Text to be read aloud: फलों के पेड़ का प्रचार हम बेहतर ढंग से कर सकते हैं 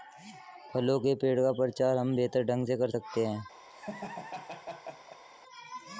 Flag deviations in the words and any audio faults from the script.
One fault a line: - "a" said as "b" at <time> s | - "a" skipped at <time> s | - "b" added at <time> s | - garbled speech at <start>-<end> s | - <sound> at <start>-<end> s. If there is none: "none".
- laugh at 3.7-5.2 s